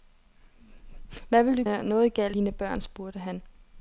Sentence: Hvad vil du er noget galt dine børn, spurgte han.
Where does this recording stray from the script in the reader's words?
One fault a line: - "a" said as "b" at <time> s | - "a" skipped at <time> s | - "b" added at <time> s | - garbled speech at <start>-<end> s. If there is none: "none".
none